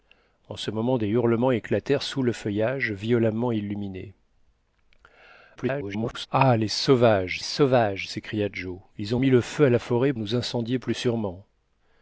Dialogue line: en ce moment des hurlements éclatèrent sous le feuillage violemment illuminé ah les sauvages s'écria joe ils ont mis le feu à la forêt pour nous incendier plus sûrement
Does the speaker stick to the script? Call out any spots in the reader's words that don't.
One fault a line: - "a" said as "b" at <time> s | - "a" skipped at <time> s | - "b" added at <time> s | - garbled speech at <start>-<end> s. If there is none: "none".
- garbled speech at 5.6-6.3 s
- "sauvages" added at 7.4 s
- "pour" skipped at 10.1 s